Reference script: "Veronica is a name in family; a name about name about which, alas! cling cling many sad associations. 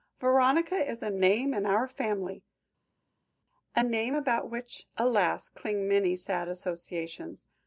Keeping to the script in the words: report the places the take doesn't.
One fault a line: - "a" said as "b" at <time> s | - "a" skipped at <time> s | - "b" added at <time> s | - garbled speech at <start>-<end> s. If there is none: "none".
- "our" added at 1.7 s
- "name about" skipped at 4.5 s
- "cling" skipped at 5.9 s